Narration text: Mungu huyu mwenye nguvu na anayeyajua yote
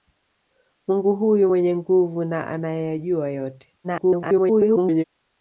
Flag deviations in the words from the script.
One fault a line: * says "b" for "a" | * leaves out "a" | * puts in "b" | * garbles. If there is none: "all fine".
* garbles